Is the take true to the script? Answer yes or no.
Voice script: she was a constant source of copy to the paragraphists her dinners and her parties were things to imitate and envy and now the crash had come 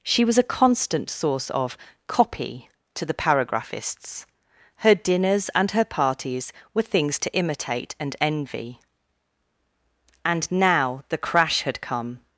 yes